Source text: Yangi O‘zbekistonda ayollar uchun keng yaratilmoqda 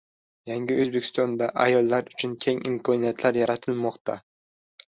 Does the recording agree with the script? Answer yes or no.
no